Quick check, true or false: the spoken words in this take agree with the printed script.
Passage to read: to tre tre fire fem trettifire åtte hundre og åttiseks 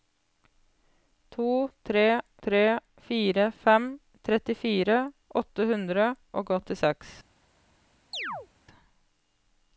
true